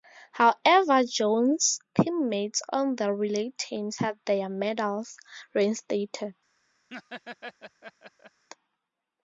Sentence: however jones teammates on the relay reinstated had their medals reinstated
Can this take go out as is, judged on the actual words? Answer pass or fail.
fail